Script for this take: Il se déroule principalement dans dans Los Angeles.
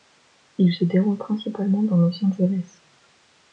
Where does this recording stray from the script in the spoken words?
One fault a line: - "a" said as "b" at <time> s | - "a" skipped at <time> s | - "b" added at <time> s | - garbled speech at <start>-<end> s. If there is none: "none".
- "dans" skipped at 2.0 s